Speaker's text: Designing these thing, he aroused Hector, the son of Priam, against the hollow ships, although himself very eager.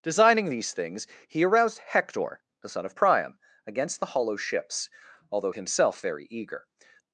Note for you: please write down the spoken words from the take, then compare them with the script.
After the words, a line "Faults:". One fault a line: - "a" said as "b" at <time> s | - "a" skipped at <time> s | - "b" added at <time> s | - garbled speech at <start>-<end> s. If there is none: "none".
Designing these things, he aroused Hector, the son of Priam, against the hollow ships, although himself very eager.
Faults:
- "thing" said as "things" at 0.7 s